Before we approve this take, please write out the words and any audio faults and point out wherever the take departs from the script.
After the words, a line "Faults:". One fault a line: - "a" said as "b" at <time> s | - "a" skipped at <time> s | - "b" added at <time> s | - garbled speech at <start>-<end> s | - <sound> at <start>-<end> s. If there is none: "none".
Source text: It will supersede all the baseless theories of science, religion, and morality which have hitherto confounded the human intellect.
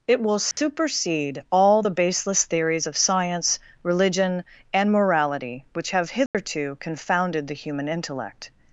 It will supersede all the baseless theories of science, religion, and morality which have hitherto confounded the human intellect.
Faults:
- dropout at 0.5-0.6 s
- dropout at 6.3-6.3 s